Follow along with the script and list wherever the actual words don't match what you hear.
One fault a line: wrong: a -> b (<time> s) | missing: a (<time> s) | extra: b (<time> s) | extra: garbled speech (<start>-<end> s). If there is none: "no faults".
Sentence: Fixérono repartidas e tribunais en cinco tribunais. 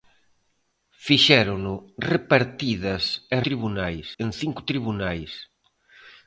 no faults